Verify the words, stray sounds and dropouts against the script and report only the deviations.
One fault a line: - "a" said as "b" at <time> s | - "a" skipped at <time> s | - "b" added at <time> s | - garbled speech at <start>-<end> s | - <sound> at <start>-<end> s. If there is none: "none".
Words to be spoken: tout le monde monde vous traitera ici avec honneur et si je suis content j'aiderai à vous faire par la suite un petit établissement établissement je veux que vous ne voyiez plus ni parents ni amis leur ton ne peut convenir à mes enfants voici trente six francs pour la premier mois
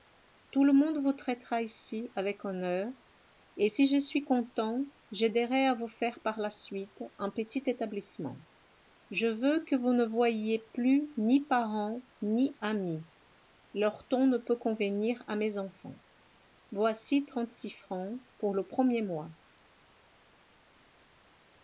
- "monde" skipped at 1.0 s
- "établissement" skipped at 8.4 s
- "la" said as "le" at 18.5 s